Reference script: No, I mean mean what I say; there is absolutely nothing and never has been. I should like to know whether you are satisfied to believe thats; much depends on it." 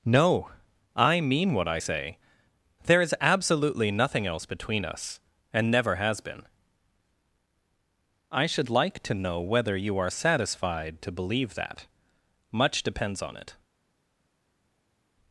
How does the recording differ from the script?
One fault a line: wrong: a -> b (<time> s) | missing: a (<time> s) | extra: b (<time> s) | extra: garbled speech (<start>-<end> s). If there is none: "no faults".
missing: mean (1.5 s)
extra: else between us (4.3 s)
wrong: thats -> that (11.5 s)